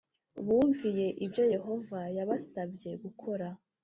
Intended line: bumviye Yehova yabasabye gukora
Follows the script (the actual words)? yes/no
no